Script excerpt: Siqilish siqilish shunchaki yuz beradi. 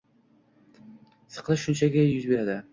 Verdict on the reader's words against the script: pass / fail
fail